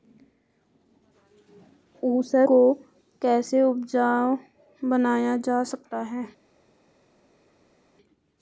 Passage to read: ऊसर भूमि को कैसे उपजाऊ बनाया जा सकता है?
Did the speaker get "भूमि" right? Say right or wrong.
wrong